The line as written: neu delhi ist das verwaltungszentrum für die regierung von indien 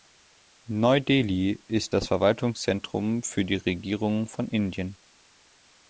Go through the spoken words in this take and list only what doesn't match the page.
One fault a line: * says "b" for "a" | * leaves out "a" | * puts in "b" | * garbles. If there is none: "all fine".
all fine